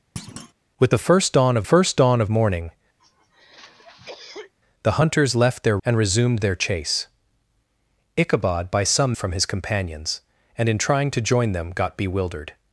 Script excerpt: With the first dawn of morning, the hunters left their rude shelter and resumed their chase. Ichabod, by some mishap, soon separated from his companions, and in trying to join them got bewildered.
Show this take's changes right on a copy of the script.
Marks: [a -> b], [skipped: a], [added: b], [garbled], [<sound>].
[thud] With the first dawn of [added: first dawn of] morning, [cough] the hunters left their [skipped: rude shelter] and resumed their chase. Ichabod, by some [skipped: mishap, soon separated] from his companions, and in trying to join them got bewildered.